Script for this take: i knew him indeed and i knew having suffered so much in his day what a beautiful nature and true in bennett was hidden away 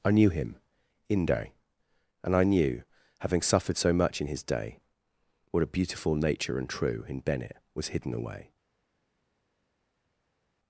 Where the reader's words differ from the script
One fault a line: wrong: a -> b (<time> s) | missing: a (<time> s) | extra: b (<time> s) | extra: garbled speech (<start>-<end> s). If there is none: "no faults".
wrong: indeed -> inde (1.1 s)